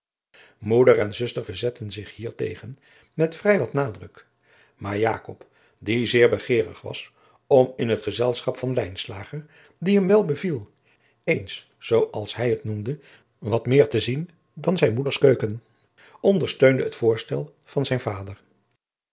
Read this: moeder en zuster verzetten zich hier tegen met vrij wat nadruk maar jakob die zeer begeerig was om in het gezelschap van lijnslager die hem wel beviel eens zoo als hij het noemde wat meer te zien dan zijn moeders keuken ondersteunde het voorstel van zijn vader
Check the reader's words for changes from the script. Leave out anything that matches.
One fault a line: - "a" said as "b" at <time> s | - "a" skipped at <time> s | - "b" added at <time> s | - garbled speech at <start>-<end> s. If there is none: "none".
none